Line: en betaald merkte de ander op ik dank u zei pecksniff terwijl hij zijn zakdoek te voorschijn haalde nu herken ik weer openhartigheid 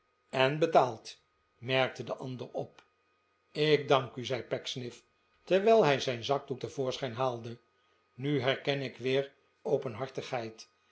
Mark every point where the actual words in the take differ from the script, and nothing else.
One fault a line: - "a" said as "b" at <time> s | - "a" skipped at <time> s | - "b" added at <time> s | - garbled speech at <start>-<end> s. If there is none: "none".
none